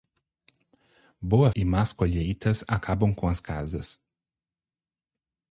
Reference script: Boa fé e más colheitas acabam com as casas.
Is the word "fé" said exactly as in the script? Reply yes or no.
no